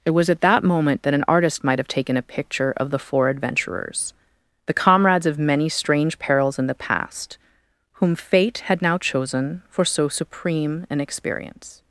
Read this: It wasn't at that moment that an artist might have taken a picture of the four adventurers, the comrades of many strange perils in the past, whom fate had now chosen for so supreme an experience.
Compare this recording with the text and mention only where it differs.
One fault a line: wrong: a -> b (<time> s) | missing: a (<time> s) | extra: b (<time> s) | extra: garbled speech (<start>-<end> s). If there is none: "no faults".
wrong: wasn't -> was (0.1 s)